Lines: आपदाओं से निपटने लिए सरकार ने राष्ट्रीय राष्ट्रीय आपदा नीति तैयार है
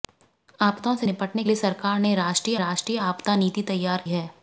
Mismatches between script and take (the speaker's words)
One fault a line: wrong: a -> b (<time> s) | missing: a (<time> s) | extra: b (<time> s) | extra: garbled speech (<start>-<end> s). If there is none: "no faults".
no faults